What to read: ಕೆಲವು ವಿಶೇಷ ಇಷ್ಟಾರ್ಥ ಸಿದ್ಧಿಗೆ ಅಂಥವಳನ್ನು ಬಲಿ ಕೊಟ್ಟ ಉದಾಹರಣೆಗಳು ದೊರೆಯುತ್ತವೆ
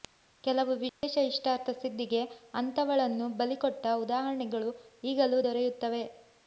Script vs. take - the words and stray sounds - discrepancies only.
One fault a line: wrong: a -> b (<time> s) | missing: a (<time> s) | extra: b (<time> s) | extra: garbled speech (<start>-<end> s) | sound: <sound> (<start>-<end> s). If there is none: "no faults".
sound: dropout (0.9-1.0 s)
extra: ಈಗಲೂ (5.0 s)